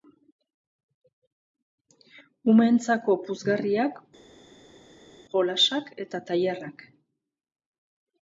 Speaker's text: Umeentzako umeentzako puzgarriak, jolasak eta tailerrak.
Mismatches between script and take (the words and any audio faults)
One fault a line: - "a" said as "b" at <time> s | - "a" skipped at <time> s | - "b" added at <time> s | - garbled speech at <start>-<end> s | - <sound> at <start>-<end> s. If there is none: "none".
- "umeentzako" skipped at 3.2 s